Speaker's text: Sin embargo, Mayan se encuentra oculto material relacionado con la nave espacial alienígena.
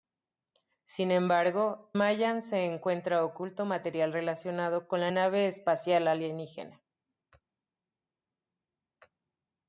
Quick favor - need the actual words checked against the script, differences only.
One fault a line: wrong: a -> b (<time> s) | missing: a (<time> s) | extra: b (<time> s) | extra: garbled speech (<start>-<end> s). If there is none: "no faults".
no faults